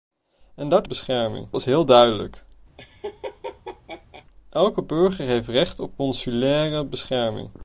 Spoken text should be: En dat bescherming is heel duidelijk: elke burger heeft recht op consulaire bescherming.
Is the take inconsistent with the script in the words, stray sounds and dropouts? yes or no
yes